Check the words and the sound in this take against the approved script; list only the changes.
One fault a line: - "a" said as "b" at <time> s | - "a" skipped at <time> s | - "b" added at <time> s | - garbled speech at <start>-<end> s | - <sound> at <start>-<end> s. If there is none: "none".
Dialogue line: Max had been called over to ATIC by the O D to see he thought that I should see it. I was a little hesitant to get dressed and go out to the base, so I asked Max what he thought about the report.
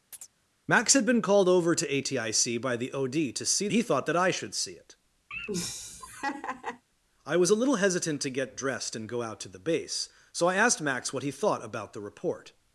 - chirp at 0.1-0.3 s
- laugh at 5.3-6.8 s